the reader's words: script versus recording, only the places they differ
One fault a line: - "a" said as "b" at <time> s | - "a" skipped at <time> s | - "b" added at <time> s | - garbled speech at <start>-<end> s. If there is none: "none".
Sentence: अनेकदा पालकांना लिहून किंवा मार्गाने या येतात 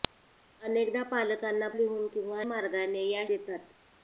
none